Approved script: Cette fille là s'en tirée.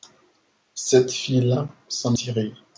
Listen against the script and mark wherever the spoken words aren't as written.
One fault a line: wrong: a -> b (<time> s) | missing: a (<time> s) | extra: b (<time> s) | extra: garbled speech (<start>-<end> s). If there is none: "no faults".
no faults